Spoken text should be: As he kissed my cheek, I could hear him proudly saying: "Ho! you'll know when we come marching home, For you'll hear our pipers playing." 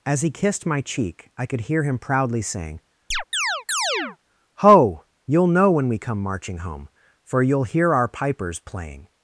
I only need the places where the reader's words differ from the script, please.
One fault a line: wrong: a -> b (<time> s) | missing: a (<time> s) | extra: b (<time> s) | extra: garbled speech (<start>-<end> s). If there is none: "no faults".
no faults